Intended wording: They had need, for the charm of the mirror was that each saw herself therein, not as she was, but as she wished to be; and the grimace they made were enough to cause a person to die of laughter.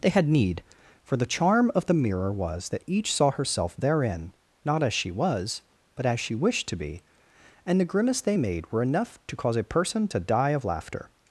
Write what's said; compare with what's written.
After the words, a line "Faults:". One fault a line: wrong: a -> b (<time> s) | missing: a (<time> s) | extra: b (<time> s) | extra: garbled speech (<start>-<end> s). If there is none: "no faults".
They had need, for the charm of the mirror was that each saw herself therein, not as she was, but as she wished to be; and the grimace they made were enough to cause a person to die of laughter.
Faults:
no faults